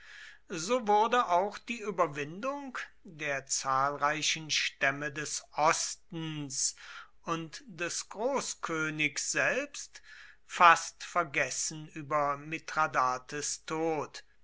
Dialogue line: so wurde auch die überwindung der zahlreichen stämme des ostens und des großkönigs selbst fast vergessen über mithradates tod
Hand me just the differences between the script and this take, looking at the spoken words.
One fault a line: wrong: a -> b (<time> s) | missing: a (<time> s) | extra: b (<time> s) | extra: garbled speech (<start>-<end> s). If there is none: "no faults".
no faults